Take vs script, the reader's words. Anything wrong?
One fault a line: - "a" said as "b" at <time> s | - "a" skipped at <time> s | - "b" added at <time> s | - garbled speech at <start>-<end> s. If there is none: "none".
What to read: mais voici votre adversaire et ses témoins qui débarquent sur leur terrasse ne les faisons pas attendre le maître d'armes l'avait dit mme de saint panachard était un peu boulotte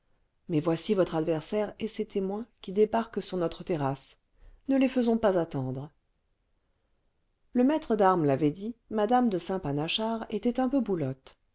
- "leur" said as "notre" at 3.4 s